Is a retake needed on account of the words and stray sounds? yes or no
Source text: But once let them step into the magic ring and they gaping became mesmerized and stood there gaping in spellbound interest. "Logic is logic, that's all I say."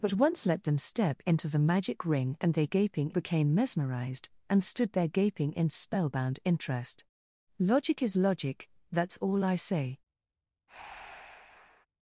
yes